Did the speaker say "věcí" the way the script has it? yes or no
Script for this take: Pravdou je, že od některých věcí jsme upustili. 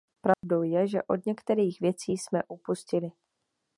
yes